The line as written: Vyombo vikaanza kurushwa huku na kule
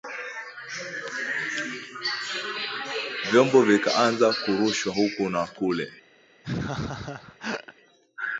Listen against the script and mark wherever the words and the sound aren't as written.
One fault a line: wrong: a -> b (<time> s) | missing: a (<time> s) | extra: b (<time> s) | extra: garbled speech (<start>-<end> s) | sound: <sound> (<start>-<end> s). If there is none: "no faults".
sound: laugh (6.4-7.7 s)